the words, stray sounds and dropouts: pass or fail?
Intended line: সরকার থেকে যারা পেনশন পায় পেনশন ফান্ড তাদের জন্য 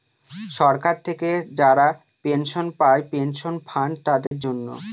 fail